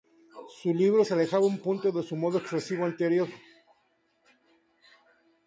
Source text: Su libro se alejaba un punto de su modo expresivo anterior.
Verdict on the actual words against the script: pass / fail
pass